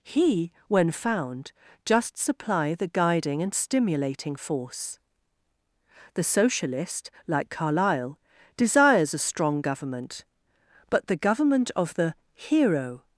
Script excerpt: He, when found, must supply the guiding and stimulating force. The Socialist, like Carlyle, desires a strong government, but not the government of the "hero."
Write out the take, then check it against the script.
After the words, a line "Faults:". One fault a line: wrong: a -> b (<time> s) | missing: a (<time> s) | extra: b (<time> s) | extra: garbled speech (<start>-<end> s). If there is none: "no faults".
He, when found, just supply the guiding and stimulating force. The Socialist, like Carlyle, desires a strong government, but the government of the "hero."
Faults:
wrong: must -> just (1.8 s)
missing: not (11.1 s)